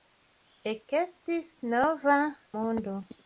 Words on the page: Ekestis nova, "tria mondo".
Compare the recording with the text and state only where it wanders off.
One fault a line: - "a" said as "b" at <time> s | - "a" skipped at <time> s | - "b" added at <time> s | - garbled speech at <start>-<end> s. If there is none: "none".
- "tria" skipped at 2.2 s